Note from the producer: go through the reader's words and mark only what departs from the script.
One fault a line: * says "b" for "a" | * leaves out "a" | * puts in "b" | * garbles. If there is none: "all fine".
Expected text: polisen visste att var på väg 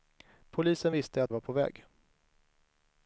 all fine